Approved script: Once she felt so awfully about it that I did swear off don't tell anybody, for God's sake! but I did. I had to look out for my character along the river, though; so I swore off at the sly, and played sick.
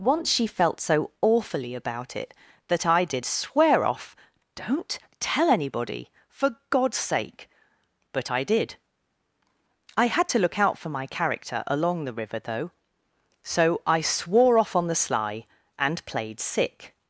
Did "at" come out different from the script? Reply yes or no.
yes